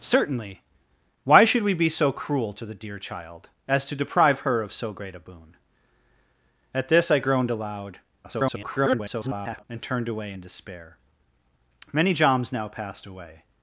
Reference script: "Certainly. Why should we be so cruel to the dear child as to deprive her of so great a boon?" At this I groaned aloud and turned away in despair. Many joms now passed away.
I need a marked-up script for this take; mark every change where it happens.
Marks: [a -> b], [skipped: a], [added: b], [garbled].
"Certainly. Why should we be so cruel to the dear child as to deprive her of so great a boon?" At this I groaned aloud [garbled] and turned away in despair. Many joms now passed away.